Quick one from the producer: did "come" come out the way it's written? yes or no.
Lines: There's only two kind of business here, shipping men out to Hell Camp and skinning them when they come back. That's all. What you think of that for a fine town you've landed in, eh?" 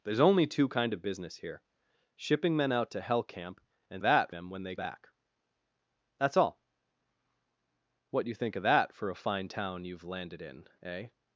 no